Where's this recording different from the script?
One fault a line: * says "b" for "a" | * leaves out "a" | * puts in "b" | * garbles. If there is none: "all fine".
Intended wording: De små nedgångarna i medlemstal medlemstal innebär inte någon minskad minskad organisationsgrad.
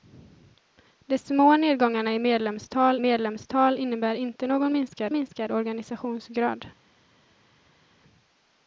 all fine